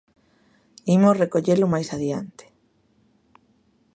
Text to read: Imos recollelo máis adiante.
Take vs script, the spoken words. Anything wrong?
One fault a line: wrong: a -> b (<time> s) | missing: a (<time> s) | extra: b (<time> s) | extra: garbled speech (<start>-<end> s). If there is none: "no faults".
no faults